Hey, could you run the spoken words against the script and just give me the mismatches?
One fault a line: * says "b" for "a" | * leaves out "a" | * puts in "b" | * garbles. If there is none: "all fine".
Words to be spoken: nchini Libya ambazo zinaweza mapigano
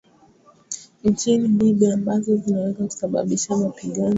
* puts in "kusababisha"